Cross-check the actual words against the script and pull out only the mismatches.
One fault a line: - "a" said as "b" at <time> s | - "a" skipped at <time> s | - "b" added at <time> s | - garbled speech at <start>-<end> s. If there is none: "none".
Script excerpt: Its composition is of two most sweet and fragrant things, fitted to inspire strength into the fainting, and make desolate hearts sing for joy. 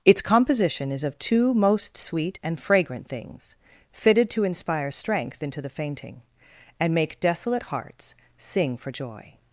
none